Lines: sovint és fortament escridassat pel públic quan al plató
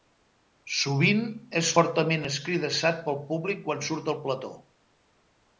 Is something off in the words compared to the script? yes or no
yes